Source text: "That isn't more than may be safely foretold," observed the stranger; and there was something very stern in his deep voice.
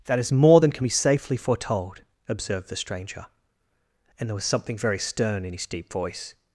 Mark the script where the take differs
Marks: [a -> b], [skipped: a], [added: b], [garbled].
"That [isn't -> is] more than [may -> can] be safely foretold," observed the stranger; and there was something very stern in his deep voice.